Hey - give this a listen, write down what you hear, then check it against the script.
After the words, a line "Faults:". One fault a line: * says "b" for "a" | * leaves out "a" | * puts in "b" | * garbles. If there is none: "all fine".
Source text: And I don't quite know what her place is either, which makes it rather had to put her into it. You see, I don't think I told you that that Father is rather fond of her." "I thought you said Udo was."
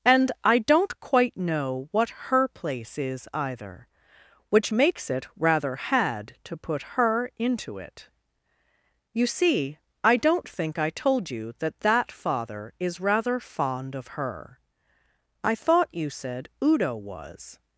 And I don't quite know what her place is either, which makes it rather had to put her into it. You see, I don't think I told you that that Father is rather fond of her." "I thought you said Udo was."
Faults:
all fine